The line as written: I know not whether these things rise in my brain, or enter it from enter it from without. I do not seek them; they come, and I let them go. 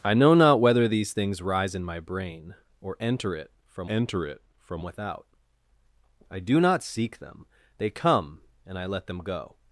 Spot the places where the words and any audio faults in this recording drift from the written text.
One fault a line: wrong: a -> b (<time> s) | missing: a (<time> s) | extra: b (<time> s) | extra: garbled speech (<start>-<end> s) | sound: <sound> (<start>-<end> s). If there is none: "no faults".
no faults